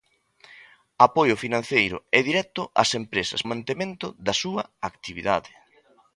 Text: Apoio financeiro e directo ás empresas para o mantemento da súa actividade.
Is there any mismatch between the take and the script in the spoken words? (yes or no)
yes